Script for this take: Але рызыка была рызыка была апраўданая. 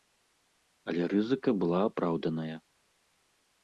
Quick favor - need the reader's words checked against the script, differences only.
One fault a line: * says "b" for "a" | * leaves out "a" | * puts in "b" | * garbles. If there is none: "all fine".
* leaves out "рызыка была"